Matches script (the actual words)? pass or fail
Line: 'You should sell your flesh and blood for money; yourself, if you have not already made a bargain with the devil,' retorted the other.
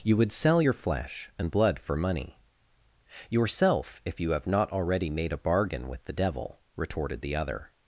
fail